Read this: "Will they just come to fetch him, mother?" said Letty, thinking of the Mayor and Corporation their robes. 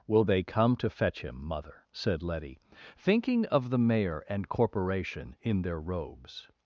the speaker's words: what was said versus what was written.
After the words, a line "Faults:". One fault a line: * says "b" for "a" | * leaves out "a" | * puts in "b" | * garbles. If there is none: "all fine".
"Will they come to fetch him, mother?" said Letty, thinking of the Mayor and Corporation in their robes.
Faults:
* leaves out "just"
* puts in "in"